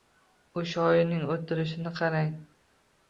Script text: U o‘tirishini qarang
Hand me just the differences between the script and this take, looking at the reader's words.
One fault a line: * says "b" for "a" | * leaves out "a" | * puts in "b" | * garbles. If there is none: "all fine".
* puts in "shoirning"